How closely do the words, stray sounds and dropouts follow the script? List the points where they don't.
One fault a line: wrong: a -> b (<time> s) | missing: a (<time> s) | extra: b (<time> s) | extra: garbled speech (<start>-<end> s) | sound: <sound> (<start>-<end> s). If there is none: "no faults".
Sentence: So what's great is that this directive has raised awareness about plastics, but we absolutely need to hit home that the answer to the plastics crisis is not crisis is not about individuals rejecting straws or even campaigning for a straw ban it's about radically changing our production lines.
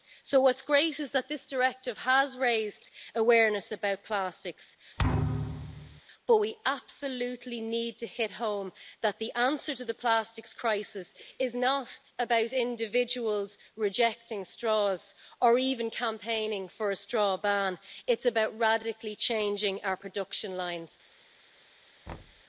sound: thud (5.0-6.0 s)
missing: crisis is not (12.0 s)
sound: thud (22.1-22.4 s)